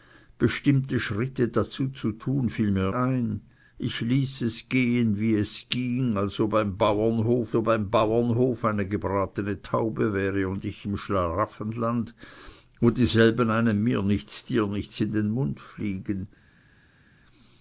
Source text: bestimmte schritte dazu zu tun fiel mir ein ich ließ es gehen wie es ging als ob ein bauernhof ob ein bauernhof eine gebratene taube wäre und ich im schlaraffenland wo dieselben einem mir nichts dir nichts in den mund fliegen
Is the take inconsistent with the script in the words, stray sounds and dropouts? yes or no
no